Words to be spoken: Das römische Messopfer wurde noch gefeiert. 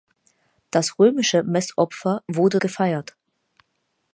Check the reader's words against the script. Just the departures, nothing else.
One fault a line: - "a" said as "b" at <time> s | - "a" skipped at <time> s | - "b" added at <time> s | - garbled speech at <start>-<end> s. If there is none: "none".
- "noch" skipped at 2.6 s